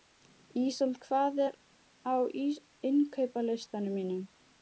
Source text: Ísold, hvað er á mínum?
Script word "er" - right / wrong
right